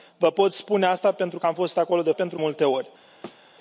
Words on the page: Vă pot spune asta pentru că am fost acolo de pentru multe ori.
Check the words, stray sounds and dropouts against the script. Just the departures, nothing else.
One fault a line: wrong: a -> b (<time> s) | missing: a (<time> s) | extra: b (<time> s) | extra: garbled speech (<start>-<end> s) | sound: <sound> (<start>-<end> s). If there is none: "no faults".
sound: thud (3.2-3.4 s)